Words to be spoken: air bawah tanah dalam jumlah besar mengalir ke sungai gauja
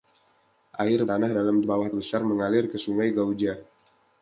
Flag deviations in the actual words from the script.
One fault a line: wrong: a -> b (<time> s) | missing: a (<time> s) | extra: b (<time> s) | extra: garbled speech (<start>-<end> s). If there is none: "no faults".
missing: bawah (1.1 s)
wrong: jumlah -> bawah (1.6 s)